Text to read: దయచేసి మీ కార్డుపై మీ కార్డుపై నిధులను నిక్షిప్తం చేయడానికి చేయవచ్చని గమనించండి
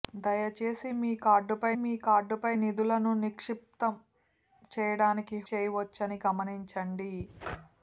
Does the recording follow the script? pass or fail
pass